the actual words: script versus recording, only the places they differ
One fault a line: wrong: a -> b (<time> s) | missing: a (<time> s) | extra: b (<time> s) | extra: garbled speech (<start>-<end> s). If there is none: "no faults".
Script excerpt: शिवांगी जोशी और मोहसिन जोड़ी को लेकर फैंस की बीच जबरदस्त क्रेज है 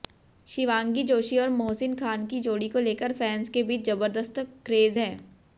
extra: खान की (1.9 s)
wrong: की -> के (3.5 s)